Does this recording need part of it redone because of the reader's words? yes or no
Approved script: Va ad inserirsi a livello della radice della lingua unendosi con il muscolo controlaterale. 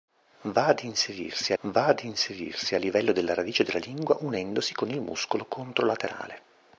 yes